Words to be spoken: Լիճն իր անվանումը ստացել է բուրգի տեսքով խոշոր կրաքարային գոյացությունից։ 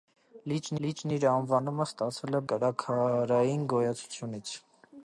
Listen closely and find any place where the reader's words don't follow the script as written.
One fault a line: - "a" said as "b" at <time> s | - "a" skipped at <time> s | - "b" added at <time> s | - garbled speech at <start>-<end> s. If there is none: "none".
- "լիճն" added at 0.8 s
- "բուրգի տեսքով խոշոր" skipped at 2.4 s